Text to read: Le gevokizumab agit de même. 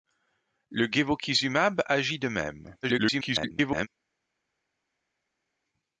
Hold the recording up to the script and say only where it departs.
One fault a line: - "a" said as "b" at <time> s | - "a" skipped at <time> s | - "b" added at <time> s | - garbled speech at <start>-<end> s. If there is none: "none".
- garbled speech at 2.8-3.9 s